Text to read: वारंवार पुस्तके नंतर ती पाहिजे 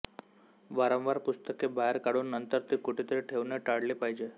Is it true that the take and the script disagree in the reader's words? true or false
true